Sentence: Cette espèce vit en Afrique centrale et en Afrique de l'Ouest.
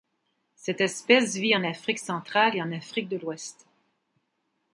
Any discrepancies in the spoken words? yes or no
no